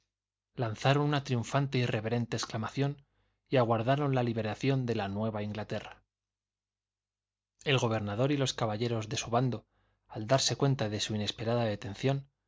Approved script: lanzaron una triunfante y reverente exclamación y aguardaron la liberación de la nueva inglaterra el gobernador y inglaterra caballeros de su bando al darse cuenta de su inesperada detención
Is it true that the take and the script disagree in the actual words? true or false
true